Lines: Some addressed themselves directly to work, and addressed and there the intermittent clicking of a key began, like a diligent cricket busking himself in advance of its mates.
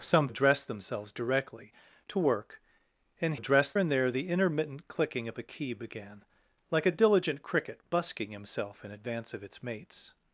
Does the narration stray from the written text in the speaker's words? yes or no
no